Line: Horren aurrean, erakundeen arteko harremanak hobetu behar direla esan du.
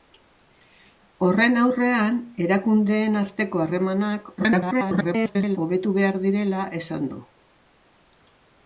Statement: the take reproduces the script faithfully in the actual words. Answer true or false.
false